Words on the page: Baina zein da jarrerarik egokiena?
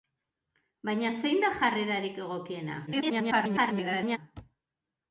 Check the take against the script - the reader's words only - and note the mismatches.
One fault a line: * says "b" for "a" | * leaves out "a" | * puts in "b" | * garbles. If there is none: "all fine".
* garbles